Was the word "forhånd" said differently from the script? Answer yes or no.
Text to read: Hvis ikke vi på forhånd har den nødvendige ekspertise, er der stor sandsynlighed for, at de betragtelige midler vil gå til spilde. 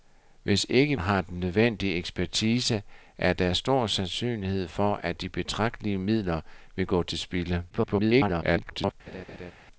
yes